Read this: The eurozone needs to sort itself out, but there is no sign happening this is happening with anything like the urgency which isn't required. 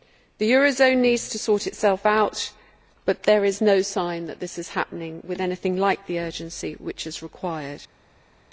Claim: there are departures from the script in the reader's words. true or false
true